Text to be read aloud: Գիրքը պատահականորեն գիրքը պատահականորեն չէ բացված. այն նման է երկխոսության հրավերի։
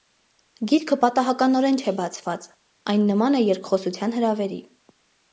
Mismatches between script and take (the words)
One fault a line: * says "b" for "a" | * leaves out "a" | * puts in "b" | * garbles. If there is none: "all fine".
* leaves out "գիրքը պատահականորեն"